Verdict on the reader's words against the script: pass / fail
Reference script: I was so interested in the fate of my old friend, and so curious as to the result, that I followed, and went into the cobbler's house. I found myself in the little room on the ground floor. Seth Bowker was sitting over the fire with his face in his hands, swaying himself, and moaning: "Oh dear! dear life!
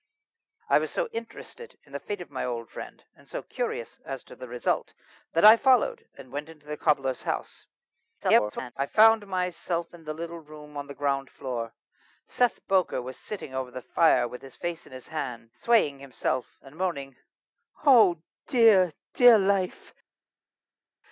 fail